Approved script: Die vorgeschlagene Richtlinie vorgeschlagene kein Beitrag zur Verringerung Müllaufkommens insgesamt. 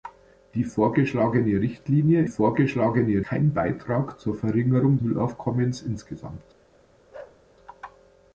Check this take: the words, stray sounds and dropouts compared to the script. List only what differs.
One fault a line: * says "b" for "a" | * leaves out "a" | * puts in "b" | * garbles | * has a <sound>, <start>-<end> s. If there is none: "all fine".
* has a bark, 7.1-7.4 s